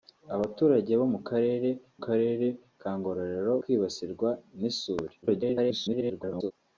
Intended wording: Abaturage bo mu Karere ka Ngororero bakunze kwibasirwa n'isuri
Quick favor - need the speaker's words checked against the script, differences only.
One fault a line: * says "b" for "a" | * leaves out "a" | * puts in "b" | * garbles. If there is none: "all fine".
* puts in "Karere"
* leaves out "bakunze"
* garbles